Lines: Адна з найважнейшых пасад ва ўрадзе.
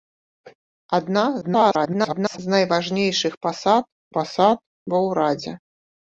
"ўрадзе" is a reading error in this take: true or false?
false